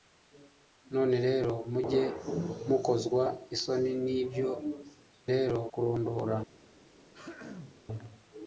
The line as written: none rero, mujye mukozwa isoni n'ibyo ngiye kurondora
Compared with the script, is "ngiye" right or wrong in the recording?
wrong